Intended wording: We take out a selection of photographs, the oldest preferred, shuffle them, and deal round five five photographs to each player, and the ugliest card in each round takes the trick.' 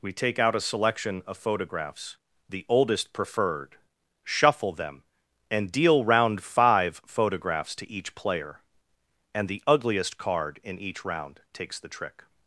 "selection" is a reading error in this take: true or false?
false